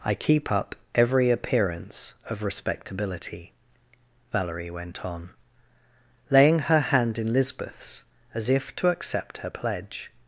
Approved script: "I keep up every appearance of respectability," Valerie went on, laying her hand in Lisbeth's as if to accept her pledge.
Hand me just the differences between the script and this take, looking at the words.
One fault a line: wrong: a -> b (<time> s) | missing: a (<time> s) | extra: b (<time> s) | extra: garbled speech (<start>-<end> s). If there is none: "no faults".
no faults